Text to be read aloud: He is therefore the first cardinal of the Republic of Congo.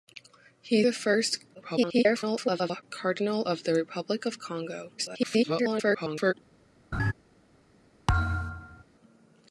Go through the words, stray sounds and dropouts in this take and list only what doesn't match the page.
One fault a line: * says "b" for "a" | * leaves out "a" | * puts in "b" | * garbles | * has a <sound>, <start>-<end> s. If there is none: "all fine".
* leaves out "is therefore"
* garbles
* garbles
* has a laugh, 6.9-7.1 s
* has a thud, 8.1-8.8 s